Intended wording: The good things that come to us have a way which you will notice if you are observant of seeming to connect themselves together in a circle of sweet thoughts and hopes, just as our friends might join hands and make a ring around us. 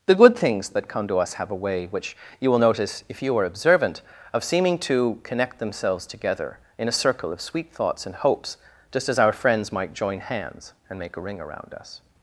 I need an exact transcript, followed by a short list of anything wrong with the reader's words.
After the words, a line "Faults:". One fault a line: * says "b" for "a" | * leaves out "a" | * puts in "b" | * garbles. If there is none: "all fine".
The good things that come to us have a way which you will notice if you are observant of seeming to connect themselves together in a circle of sweet thoughts and hopes, just as our friends might join hands and make a ring around us.
Faults:
all fine